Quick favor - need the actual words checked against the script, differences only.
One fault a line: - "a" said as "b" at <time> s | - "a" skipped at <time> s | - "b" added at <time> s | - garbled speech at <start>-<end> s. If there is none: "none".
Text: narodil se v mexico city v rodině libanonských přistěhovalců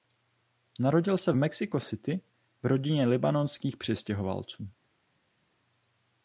none